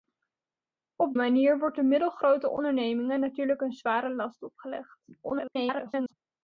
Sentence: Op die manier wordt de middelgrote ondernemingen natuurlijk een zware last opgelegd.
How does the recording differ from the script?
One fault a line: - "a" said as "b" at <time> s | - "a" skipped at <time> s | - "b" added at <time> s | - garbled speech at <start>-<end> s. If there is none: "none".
- "die" skipped at 1.1 s
- garbled speech at 5.2-6.1 s